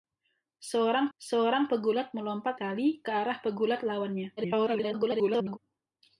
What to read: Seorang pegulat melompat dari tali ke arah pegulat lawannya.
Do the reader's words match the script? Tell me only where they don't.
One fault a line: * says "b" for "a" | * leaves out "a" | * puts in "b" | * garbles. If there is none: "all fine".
* puts in "seorang"
* leaves out "dari"
* garbles